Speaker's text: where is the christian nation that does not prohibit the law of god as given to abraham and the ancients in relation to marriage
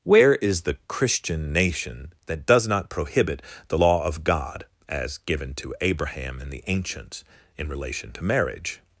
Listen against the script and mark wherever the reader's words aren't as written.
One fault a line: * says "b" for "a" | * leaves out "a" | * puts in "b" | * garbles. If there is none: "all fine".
all fine